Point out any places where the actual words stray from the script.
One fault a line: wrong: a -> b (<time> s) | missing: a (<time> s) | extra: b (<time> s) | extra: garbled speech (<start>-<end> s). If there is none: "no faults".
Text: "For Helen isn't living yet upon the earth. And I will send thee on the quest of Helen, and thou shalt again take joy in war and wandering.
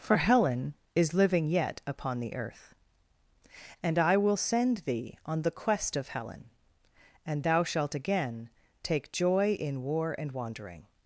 wrong: isn't -> is (0.9 s)